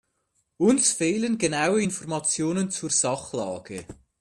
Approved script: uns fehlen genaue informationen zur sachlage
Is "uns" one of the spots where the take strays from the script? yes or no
no